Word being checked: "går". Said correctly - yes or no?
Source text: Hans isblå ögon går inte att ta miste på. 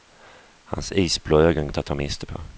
no